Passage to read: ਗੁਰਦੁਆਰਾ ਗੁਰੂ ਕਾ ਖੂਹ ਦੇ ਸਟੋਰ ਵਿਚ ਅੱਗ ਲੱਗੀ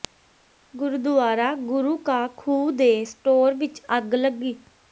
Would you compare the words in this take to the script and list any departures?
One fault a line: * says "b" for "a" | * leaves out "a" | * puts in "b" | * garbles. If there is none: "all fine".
all fine